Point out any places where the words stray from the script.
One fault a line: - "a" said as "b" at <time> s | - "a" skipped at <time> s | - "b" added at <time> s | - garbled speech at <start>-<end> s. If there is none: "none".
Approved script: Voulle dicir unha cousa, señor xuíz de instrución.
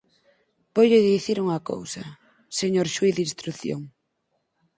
none